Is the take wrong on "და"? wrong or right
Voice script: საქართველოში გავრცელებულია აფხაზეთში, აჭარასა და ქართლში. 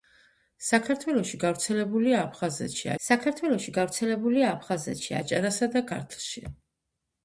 right